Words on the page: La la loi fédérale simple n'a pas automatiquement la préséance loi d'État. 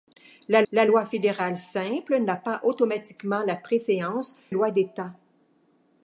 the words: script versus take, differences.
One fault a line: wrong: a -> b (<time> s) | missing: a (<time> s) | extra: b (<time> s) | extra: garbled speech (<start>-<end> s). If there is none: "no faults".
no faults